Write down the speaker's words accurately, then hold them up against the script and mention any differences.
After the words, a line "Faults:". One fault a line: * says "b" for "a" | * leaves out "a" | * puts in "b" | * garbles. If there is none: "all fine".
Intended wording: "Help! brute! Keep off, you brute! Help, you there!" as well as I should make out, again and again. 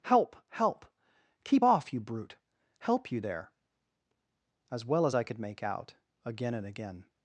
"Help! help! Keep off, you brute! Help, you there!" as well as I could make out, again and again.
Faults:
* says "help" for "brute"
* says "could" for "should"